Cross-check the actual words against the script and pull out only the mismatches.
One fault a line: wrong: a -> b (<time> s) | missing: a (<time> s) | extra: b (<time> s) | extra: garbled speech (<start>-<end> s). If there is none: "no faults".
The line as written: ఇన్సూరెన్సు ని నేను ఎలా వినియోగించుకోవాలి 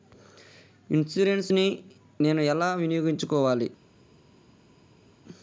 no faults